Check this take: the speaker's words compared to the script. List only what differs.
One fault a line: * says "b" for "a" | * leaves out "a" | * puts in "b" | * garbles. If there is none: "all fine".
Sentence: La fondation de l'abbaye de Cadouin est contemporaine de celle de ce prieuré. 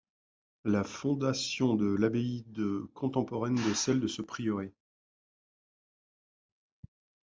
* leaves out "Cadouin est"